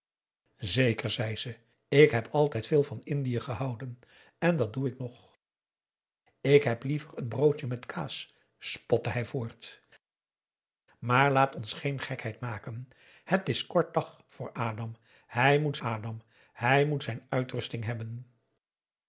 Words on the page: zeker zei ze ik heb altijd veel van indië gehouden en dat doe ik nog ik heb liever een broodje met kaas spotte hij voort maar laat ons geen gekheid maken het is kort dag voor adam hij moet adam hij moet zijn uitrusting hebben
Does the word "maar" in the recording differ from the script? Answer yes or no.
no